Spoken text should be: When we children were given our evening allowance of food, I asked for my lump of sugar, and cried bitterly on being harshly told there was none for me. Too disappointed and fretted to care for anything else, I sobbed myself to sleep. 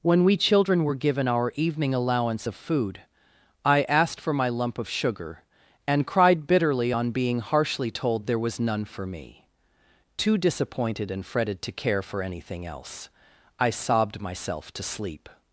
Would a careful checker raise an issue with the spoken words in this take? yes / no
no